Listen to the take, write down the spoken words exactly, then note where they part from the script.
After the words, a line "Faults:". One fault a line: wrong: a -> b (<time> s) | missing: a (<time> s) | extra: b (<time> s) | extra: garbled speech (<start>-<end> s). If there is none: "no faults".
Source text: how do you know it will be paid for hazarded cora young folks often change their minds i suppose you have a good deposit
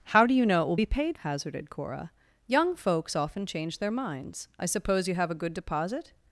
how do you know it will be paid hazarded cora young folks often change their minds i suppose you have a good deposit
Faults:
missing: for (1.2 s)